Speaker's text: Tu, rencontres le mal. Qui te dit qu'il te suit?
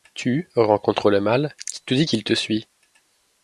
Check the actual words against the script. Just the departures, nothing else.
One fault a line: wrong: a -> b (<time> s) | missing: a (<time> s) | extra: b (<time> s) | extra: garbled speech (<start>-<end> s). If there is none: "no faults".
no faults